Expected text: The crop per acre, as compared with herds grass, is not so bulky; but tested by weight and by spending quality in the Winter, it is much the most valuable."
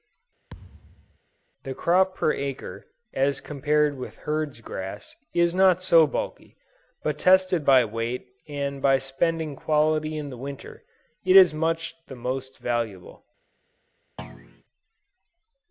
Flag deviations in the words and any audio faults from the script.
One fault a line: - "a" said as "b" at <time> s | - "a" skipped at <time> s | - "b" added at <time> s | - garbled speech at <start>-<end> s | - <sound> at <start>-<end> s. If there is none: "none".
- thud at 0.5-1.2 s
- thud at 14.2-14.6 s